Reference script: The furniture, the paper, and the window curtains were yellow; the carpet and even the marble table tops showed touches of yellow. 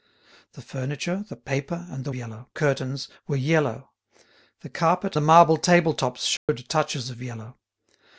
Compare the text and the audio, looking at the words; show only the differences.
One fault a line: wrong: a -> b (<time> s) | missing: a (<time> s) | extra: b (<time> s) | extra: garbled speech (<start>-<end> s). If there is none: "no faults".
wrong: window -> yellow (2.1 s)
missing: and even (5.2 s)